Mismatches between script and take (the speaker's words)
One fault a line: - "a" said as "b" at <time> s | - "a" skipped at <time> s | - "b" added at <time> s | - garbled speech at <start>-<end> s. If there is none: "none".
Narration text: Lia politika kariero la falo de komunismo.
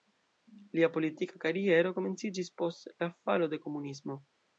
- "komenciĝis post" added at 2.0 s